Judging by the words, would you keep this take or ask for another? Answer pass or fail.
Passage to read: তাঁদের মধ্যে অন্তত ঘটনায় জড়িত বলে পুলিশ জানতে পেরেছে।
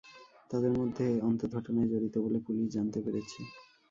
pass